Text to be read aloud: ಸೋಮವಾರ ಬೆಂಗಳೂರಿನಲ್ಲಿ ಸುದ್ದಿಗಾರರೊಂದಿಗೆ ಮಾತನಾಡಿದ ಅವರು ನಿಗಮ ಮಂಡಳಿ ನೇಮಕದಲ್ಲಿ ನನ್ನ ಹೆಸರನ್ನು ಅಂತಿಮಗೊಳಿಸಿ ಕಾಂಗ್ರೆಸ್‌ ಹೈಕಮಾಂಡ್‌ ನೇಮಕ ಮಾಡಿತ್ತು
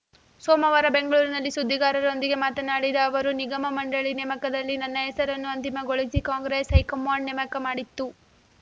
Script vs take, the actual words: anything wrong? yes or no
no